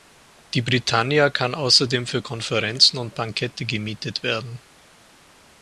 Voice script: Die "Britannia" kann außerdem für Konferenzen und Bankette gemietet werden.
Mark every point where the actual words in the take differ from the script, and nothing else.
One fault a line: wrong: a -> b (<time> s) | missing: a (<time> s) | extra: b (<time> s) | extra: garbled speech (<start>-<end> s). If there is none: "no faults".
no faults